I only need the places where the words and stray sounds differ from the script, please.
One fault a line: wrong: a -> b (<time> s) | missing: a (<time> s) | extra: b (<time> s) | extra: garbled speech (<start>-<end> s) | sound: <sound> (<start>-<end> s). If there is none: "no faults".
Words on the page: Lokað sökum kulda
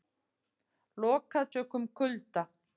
no faults